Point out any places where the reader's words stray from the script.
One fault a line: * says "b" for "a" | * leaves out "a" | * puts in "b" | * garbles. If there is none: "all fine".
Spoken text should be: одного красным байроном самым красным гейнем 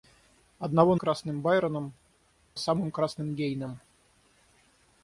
all fine